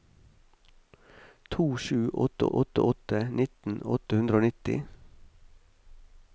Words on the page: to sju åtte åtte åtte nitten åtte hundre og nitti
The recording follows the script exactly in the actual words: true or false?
true